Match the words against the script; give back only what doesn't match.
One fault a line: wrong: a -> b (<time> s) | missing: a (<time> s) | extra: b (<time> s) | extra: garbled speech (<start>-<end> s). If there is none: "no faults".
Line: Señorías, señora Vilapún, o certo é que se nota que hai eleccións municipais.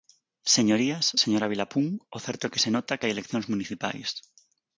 no faults